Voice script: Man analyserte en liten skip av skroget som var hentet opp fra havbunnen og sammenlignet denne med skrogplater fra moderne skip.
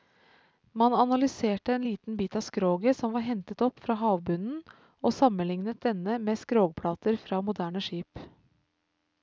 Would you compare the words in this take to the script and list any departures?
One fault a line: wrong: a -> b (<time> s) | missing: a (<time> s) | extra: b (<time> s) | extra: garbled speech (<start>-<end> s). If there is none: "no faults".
wrong: skip -> bit (2.2 s)